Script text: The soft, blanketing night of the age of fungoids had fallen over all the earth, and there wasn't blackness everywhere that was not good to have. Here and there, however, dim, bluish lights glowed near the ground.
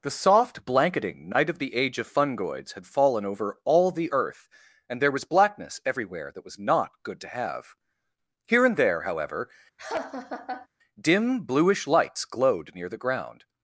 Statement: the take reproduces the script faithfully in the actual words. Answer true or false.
false